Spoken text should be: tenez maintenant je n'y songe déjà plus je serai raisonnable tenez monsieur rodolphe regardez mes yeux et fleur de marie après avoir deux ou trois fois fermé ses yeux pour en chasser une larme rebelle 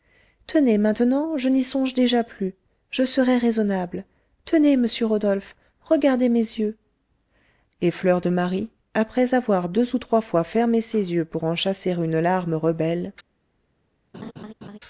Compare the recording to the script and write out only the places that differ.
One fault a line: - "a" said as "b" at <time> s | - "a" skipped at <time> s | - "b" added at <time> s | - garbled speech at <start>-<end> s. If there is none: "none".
none